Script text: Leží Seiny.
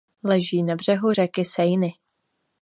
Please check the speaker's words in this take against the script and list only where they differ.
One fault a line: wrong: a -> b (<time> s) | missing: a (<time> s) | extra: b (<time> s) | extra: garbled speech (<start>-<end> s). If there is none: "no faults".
extra: na břehu řeky (0.6 s)